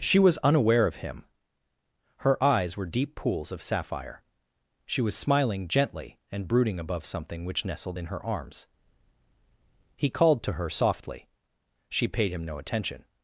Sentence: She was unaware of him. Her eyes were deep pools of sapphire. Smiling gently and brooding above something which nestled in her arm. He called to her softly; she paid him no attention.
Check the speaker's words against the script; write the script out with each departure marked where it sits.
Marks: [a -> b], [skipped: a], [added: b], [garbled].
She was unaware of him. Her eyes were deep pools of sapphire. [added: She was] Smiling gently and brooding above something which nestled in her [arm. -> arms] He called to her softly; she paid him no attention.